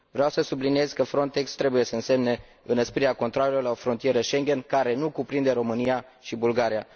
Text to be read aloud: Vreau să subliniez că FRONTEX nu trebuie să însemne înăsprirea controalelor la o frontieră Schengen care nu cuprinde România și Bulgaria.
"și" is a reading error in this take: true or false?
false